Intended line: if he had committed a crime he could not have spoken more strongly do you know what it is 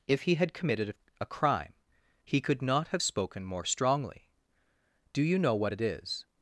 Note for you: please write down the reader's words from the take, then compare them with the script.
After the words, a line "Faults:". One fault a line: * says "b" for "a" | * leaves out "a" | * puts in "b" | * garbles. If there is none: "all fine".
if he had committed a crime he could not have spoken more strongly do you know what it is
Faults:
all fine